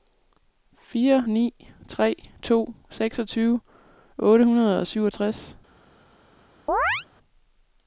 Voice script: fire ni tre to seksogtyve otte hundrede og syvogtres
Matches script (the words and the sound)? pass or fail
fail